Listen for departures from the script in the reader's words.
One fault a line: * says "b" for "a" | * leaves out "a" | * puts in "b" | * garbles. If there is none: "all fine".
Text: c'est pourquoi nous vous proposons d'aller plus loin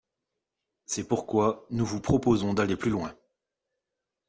all fine